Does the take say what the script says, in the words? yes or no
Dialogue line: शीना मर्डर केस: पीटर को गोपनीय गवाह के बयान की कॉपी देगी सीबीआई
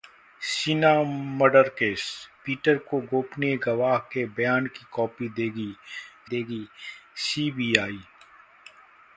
no